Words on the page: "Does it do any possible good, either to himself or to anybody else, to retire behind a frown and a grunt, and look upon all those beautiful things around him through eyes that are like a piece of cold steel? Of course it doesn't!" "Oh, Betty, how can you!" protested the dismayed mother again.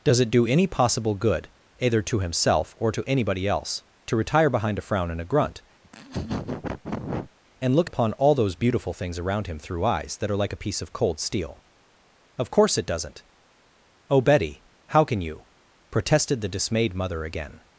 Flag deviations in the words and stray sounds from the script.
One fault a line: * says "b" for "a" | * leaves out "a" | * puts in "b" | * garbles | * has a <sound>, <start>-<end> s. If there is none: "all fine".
* has a laugh, 5.8-7.3 s